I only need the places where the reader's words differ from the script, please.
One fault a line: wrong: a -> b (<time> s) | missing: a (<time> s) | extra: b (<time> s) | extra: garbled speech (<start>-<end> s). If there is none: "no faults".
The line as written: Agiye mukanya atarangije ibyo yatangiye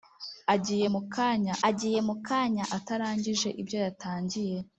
extra: agiye mukanya (1.7 s)